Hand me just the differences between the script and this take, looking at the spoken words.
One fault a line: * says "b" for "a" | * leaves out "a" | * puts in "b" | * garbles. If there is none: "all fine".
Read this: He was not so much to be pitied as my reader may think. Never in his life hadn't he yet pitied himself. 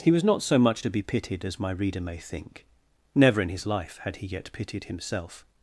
* says "had" for "hadn't"